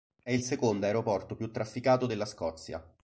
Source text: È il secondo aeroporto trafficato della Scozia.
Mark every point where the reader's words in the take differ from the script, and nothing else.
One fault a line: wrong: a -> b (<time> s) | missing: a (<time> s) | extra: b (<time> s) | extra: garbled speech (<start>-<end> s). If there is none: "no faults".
extra: più (1.4 s)